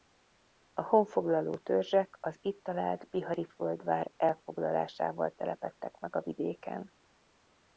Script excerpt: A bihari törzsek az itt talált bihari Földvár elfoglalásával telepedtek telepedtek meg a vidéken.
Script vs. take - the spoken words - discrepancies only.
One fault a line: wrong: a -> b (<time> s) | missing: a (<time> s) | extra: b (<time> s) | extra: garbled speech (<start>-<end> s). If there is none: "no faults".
wrong: bihari -> honfoglaló (0.8 s)
missing: telepedtek (6.0 s)